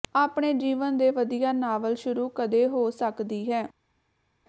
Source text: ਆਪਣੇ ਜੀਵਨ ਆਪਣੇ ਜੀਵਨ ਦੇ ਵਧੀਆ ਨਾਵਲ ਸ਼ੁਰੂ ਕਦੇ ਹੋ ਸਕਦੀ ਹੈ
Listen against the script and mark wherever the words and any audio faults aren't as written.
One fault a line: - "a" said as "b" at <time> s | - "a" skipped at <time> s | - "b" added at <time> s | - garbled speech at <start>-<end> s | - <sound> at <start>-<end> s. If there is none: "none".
- "ਆਪਣੇ ਜੀਵਨ" skipped at 1.0 s